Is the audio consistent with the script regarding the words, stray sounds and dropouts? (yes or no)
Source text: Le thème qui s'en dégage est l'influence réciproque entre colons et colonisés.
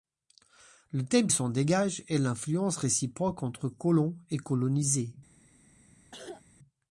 no